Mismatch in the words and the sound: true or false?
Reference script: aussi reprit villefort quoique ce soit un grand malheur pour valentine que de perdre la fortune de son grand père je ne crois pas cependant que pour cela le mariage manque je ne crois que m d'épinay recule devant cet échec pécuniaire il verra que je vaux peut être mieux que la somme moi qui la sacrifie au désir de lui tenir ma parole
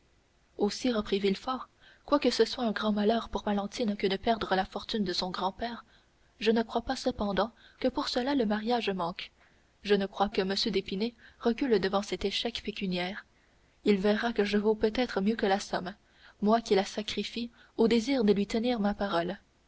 false